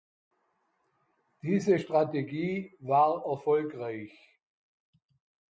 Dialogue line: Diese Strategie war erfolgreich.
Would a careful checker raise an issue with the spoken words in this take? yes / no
no